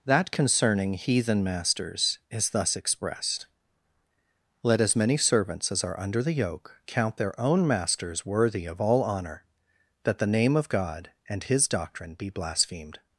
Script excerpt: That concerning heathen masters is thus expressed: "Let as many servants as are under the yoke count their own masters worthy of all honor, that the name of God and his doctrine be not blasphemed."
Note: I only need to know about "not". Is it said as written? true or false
false